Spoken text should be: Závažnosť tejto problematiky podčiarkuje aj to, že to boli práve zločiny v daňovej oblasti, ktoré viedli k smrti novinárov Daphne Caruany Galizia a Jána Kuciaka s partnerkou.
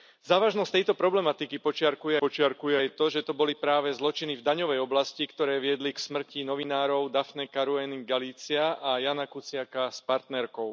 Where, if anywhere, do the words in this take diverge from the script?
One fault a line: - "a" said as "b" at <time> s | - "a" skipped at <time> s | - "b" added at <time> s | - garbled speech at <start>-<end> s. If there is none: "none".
- "podčiarkuje" added at 2.2 s